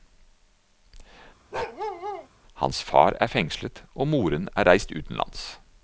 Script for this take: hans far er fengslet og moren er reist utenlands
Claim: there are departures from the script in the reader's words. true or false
false